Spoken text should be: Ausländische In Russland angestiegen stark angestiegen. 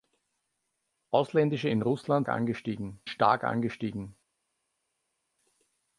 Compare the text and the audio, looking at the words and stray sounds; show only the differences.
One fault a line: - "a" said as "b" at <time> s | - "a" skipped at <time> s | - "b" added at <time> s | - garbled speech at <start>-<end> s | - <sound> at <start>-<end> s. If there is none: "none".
none